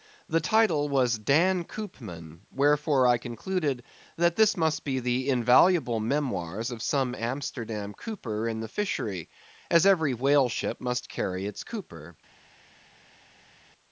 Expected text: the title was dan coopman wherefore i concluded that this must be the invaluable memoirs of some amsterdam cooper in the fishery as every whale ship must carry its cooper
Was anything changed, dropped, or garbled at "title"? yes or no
no